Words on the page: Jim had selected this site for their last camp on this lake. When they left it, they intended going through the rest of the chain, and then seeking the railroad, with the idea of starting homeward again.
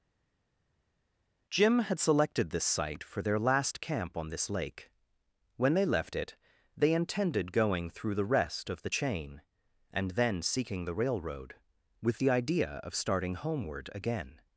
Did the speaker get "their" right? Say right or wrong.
right